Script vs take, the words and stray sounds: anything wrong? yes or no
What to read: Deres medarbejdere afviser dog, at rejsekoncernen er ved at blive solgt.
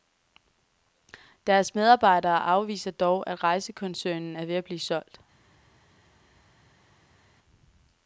no